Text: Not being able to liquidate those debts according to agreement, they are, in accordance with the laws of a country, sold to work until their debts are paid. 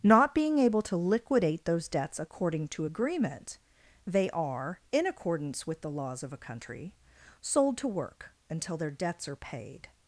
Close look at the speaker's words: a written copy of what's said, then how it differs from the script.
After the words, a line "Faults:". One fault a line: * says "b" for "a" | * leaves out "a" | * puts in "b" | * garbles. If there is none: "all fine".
Not being able to liquidate those debts according to agreement, they are, in accordance with the laws of a country, sold to work until their debts are paid.
Faults:
all fine